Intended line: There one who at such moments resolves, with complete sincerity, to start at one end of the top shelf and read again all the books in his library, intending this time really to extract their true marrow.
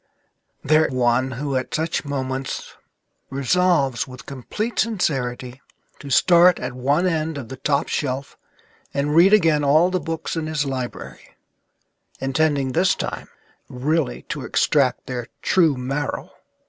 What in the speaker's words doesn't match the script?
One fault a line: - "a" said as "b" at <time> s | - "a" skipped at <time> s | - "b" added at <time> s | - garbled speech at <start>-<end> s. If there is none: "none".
none